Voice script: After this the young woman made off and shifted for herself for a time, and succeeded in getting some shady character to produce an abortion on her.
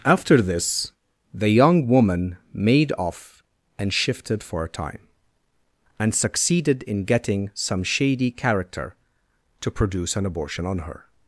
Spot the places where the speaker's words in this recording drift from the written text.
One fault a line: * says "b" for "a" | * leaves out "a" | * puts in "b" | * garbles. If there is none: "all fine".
* leaves out "herself for"